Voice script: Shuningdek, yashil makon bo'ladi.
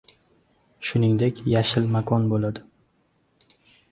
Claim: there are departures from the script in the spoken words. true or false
false